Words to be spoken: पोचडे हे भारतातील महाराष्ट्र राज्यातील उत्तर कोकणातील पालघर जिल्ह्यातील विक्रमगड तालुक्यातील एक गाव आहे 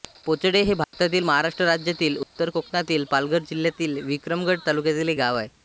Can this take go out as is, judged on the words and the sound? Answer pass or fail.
fail